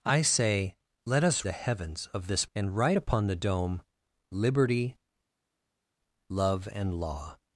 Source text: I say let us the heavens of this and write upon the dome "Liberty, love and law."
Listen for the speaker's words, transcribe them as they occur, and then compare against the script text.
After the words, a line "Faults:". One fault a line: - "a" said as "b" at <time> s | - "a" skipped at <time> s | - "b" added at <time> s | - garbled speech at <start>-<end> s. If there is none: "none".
I say let us the heavens of this and write upon the dome "Liberty, love and law."
Faults:
none